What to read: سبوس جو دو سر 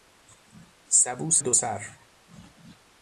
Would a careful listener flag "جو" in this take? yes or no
yes